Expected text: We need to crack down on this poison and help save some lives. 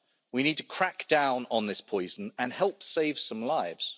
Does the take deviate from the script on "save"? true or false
false